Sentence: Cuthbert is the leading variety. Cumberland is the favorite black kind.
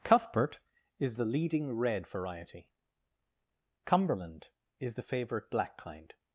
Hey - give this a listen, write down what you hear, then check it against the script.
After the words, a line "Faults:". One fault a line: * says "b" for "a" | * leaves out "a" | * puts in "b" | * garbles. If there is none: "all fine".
Cuthbert is the leading red variety. Cumberland is the favorite black kind.
Faults:
* puts in "red"